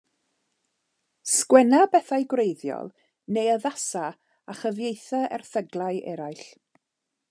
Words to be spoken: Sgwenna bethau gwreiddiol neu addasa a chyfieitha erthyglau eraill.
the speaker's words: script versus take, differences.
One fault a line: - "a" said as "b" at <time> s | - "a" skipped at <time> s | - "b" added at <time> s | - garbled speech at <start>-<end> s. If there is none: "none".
none